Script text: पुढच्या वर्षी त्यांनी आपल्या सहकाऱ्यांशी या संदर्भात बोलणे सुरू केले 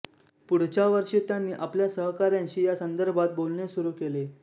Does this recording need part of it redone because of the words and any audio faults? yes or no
no